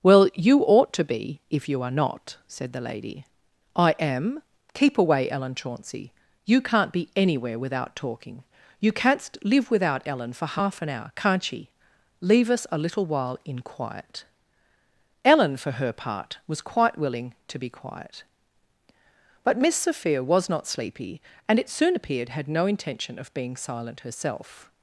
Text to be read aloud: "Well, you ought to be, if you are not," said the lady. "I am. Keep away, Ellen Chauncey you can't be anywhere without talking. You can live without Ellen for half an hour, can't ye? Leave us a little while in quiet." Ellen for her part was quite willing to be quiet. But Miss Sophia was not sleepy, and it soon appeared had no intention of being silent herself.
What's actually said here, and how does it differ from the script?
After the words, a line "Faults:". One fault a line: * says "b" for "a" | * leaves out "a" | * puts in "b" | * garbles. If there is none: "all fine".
"Well, you ought to be, if you are not," said the lady. "I am. Keep away, Ellen Chauncey you can't be anywhere without talking. You canst live without Ellen for half an hour, can't ye? Leave us a little while in quiet." Ellen for her part was quite willing to be quiet. But Miss Sophia was not sleepy, and it soon appeared had no intention of being silent herself.
Faults:
* says "canst" for "can"